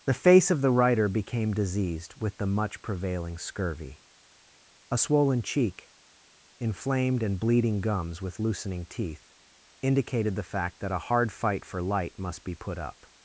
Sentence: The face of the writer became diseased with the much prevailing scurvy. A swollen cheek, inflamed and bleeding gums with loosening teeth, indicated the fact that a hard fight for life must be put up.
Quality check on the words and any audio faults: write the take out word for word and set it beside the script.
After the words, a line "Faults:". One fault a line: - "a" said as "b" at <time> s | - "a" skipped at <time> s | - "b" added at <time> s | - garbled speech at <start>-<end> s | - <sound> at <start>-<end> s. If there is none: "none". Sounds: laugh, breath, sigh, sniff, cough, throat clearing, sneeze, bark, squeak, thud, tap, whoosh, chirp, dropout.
The face of the writer became diseased with the much prevailing scurvy. A swollen cheek, inflamed and bleeding gums with loosening teeth, indicated the fact that a hard fight for light must be put up.
Faults:
- "life" said as "light" at 11.8 s